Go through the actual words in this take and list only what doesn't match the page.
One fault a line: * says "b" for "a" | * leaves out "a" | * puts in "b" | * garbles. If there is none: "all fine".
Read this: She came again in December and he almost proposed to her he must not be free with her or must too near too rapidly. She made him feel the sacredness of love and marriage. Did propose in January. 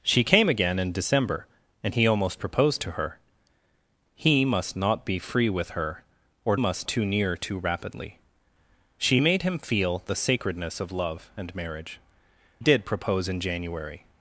all fine